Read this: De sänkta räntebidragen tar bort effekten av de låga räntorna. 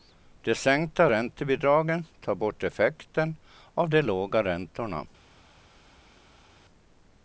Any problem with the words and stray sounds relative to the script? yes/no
no